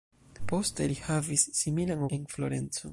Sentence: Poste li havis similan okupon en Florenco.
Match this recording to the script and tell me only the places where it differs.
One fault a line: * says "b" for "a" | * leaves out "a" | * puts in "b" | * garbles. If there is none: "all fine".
* leaves out "okupon"